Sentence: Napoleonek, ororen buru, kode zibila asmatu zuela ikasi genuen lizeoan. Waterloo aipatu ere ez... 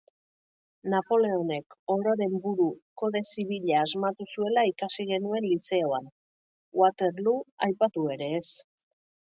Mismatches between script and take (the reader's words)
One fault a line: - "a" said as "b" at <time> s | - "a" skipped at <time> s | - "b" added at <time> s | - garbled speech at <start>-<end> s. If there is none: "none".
none